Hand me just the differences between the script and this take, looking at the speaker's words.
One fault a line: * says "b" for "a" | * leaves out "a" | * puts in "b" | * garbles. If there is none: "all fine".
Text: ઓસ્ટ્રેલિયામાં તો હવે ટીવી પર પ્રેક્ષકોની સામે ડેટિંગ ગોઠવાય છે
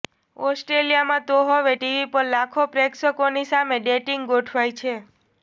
* puts in "લાખો"